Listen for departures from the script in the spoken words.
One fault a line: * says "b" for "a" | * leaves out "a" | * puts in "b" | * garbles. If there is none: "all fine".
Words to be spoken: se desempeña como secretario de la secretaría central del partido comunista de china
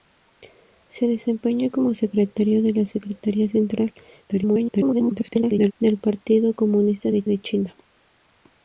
* garbles
* puts in "de"